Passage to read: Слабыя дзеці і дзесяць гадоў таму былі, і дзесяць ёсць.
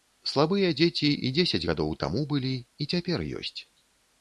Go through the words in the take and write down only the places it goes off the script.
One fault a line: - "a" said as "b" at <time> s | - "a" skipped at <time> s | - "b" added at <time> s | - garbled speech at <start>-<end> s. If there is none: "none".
- "дзесяць" said as "цяпер" at 3.0 s